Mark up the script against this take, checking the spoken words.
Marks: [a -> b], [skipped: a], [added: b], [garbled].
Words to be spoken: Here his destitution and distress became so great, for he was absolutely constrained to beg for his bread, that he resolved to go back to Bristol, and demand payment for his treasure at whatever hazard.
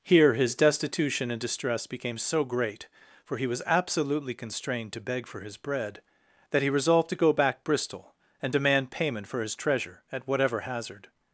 Here his destitution and distress became so great, for he was absolutely constrained to beg for his bread, that he resolved to go back [skipped: to] Bristol, and demand payment for his treasure at whatever hazard.